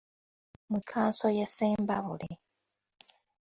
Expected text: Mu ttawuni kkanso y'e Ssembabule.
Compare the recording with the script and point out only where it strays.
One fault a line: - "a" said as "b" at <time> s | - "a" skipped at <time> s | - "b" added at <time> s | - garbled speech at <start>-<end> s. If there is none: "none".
- "ttawuni" skipped at 0.8 s